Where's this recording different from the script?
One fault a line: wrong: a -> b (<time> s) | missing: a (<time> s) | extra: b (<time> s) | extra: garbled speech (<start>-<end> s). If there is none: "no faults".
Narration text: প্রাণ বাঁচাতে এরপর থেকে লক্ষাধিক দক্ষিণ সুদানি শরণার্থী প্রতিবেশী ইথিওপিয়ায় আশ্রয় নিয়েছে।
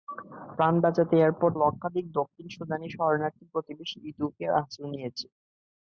missing: থেকে (1.5 s)